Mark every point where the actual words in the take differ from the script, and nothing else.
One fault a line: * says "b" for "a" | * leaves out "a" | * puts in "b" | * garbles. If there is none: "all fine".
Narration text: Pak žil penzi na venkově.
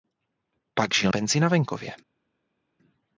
all fine